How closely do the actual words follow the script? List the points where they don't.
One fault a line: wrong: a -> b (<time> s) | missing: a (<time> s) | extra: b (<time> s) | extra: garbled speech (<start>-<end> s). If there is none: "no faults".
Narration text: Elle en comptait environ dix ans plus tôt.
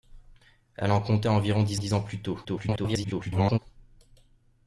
extra: dix (1.7 s)
extra: garbled speech (2.4-3.6 s)